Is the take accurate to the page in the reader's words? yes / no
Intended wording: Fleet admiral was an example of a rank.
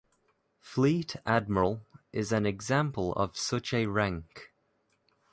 no